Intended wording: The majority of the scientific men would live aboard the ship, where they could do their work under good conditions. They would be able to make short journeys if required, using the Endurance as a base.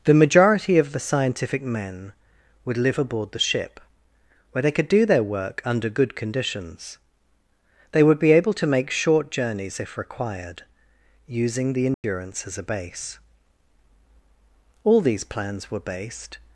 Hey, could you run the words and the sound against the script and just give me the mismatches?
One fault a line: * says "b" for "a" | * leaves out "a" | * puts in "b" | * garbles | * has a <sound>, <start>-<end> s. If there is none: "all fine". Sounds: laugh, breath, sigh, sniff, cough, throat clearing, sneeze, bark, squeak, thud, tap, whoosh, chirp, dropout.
* has a dropout, 11.9-12.0 s
* puts in "All these plans were based"